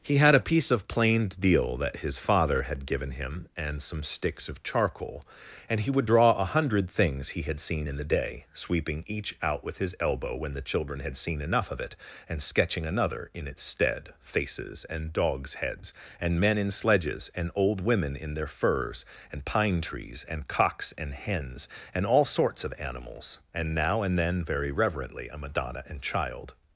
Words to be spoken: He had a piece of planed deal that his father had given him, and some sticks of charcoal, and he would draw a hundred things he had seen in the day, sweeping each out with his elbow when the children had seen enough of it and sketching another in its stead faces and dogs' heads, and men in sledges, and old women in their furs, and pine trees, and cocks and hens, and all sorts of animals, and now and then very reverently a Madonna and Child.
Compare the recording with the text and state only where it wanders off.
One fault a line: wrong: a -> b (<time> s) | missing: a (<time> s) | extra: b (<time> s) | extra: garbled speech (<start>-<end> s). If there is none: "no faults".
no faults